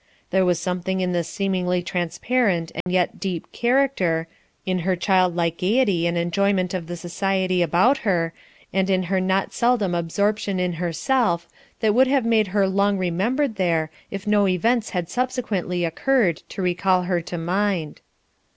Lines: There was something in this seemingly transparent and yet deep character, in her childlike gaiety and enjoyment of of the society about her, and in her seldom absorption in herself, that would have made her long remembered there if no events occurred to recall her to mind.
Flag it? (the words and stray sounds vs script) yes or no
yes